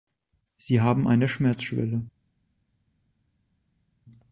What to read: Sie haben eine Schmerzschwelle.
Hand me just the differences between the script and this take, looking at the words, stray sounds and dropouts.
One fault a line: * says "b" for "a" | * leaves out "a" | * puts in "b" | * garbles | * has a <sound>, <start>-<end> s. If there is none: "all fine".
all fine